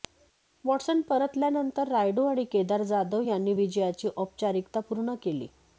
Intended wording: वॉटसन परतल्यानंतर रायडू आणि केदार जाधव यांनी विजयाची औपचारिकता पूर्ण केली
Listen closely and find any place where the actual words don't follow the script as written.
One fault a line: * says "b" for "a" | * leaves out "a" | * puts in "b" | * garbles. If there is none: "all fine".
all fine